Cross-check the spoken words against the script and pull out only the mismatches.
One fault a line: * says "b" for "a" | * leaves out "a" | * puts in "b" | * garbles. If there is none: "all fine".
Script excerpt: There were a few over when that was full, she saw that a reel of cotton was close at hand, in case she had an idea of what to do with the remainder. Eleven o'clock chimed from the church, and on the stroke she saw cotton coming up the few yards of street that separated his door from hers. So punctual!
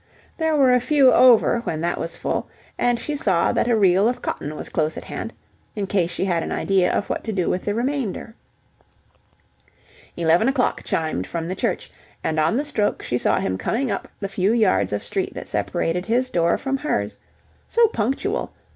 * puts in "and"
* says "him" for "cotton"